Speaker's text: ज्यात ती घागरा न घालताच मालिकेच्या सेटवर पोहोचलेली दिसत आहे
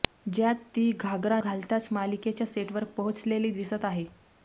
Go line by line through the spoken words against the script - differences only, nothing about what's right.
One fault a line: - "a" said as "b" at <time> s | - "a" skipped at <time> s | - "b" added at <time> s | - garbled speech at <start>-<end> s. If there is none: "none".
- "न" skipped at 1.4 s